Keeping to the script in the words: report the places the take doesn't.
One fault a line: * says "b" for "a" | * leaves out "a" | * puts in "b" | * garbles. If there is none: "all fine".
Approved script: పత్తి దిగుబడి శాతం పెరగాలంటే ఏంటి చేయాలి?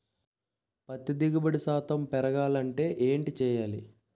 all fine